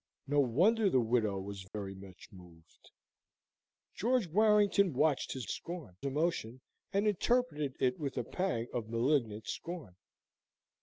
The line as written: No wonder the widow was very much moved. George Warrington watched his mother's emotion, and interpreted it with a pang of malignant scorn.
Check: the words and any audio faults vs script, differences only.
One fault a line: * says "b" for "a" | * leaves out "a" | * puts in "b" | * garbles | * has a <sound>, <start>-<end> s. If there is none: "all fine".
* has a dropout, 1.7-1.7 s
* says "scorn" for "mother's"